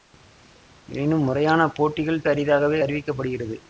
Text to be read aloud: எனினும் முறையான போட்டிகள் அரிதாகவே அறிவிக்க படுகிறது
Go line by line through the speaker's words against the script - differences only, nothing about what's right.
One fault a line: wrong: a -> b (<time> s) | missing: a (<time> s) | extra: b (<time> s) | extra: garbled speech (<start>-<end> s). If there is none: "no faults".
no faults